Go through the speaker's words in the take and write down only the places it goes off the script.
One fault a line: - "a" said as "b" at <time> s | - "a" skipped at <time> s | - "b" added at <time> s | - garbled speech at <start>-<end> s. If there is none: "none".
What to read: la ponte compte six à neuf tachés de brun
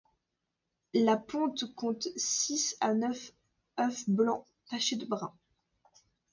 - "œufs blancs" added at 3.8 s